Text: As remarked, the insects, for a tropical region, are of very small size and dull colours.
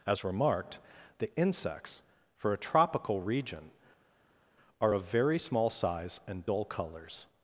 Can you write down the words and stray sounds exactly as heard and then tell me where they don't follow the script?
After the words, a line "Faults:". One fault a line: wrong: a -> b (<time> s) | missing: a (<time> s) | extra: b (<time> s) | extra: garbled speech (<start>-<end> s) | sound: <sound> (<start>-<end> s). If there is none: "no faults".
As remarked, the insects, for a tropical region, are of very small size and dull colours.
Faults:
no faults